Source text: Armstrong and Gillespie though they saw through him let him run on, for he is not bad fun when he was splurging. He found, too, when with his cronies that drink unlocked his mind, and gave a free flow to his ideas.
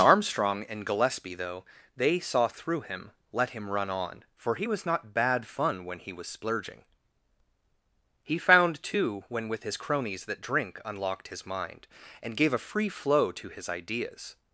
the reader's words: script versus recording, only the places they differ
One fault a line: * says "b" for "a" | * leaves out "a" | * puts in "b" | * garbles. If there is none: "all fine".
* says "was" for "is"